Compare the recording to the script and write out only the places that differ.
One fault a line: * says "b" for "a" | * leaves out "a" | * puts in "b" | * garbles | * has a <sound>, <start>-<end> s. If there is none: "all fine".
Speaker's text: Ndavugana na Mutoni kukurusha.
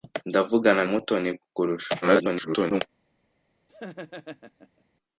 * leaves out "na"
* garbles
* has a laugh, 3.7-4.8 s